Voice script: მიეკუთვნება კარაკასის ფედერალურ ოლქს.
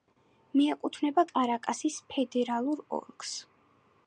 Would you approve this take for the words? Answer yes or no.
yes